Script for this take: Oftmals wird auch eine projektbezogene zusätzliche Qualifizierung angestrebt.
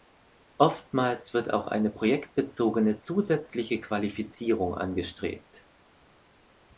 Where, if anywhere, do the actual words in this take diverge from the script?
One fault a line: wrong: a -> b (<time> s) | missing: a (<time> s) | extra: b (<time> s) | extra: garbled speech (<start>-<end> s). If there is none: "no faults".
no faults